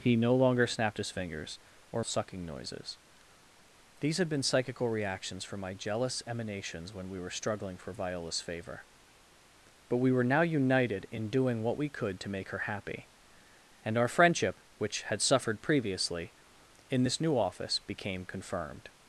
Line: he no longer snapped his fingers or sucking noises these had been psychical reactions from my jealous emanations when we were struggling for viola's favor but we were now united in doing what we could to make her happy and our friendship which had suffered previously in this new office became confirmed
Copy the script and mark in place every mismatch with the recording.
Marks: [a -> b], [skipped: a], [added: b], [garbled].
he no longer snapped his fingers or sucking noises these had been psychical reactions from my jealous emanations when we were struggling for viola's favor but we were now united in doing what we could to make her happy and our friendship which had suffered previously in this new office became confirmed